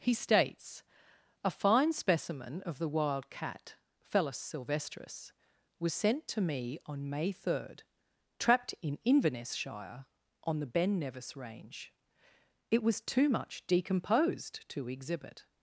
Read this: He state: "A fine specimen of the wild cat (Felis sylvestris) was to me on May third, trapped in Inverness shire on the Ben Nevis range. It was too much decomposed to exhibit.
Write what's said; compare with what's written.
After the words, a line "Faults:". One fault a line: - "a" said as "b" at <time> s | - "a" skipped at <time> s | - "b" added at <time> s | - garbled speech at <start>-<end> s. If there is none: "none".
He states: "A fine specimen of the wild cat (Felis sylvestris) was sent to me on May third, trapped in Inverness shire on the Ben Nevis range. It was too much decomposed to exhibit.
Faults:
- "state" said as "states" at 0.1 s
- "sent" added at 5.9 s